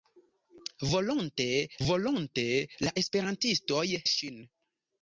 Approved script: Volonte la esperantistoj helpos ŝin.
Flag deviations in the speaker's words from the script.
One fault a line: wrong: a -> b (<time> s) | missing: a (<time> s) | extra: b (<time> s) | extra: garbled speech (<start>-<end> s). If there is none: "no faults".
extra: volonte (1.9 s)
missing: helpos (3.8 s)